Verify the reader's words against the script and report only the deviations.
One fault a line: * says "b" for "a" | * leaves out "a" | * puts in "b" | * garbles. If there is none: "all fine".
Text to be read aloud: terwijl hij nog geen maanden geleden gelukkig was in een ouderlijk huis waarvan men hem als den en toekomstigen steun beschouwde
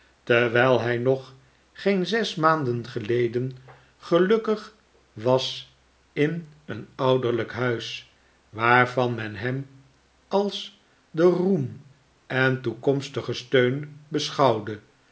* puts in "zes"
* puts in "roem"